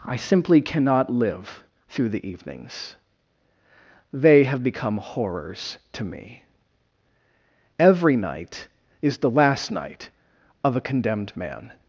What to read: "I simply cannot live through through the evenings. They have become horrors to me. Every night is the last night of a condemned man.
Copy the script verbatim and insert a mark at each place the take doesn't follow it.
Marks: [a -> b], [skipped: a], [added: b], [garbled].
"I simply cannot live through [skipped: through] the evenings. They have become horrors to me. Every night is the last night of a condemned man.